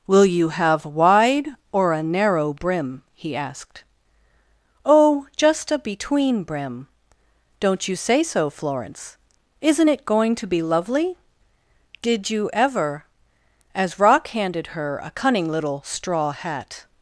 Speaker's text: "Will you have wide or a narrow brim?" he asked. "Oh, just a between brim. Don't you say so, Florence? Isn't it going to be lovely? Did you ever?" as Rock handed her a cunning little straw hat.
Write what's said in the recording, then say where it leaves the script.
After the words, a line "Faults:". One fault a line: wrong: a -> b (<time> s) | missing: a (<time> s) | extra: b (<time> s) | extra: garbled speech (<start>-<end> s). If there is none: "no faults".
"Will you have wide or a narrow brim?" he asked. "Oh, just a between brim. Don't you say so, Florence? Isn't it going to be lovely? Did you ever?" as Rock handed her a cunning little straw hat.
Faults:
no faults